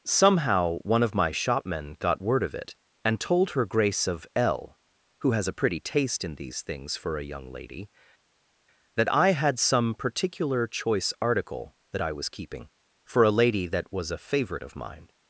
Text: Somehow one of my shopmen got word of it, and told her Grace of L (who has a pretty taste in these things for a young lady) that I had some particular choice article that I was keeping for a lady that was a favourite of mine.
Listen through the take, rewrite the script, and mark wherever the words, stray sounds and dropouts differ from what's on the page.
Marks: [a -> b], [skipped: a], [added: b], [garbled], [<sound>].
Somehow one of my shopmen got word of it, and told her Grace of L (who has a pretty taste in these things for a young lady) that I had some particular choice article that I was keeping for a lady that was a favourite of mine.